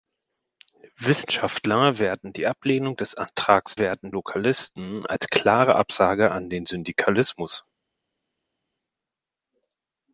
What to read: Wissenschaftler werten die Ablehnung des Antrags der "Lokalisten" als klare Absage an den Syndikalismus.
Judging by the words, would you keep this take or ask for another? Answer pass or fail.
fail